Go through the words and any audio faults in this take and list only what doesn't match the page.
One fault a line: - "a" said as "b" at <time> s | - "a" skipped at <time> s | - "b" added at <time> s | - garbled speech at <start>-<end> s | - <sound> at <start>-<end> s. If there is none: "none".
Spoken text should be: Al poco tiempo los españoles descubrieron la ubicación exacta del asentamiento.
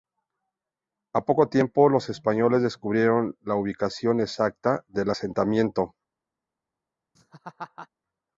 - laugh at 7.1-7.9 s